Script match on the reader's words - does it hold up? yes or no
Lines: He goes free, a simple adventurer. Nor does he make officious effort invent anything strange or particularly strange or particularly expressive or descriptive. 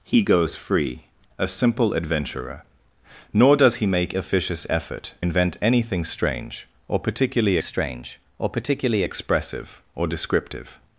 yes